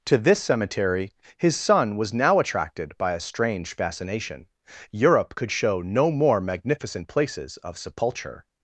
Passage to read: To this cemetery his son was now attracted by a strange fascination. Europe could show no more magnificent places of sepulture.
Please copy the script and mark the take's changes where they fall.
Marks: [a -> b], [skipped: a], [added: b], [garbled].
To this cemetery his son was now attracted by a strange fascination. Europe could show no more magnificent places of sepulture.